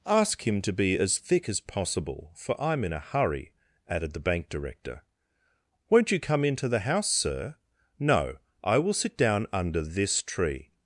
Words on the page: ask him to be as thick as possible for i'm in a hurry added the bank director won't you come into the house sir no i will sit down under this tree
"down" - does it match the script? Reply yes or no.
yes